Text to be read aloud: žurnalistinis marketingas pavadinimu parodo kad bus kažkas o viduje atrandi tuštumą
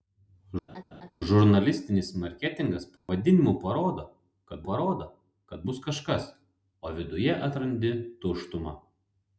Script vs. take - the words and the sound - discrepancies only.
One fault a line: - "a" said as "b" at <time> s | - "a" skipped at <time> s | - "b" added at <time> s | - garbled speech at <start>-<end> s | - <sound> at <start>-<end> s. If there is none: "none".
- laugh at 0.7-1.1 s
- dropout at 3.0-3.1 s
- "parodo kad" added at 4.7 s